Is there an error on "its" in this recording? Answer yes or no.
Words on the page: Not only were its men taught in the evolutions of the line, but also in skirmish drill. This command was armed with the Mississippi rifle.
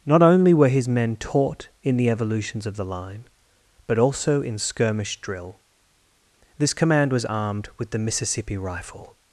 yes